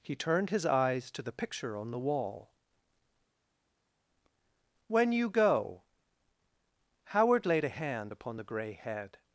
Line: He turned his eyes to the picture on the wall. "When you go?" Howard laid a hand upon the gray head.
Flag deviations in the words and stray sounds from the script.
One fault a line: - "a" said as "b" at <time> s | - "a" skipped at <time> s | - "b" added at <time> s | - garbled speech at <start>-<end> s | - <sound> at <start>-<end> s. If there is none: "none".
none